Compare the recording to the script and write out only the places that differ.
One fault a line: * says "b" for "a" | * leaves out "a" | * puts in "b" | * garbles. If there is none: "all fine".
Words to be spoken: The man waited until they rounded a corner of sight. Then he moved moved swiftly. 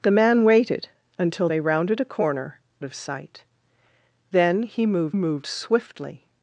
all fine